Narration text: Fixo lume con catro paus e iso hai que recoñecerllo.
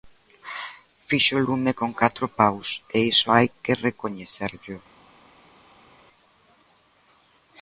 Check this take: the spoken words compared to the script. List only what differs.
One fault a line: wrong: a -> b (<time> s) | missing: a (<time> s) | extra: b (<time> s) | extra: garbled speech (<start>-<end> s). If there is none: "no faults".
no faults